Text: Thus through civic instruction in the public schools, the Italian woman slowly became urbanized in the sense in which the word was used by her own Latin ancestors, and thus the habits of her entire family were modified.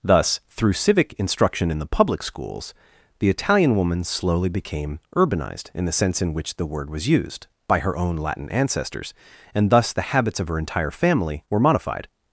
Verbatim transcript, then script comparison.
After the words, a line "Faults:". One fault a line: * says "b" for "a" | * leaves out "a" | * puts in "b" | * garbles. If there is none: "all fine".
Thus through civic instruction in the public schools, the Italian woman slowly became urbanized in the sense in which the word was used by her own Latin ancestors, and thus the habits of her entire family were modified.
Faults:
all fine